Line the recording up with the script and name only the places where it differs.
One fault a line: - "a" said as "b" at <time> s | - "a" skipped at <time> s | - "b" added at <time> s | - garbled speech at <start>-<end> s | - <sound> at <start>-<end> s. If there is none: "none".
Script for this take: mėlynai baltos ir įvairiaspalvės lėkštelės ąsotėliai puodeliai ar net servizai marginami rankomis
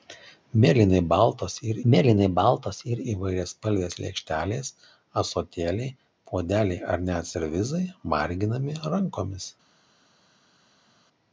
- "mėlynai baltos ir" added at 1.9 s